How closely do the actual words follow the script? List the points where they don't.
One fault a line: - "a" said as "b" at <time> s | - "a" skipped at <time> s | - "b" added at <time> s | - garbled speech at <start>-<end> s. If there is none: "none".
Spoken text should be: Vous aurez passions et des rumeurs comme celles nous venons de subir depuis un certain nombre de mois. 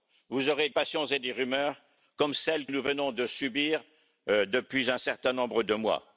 none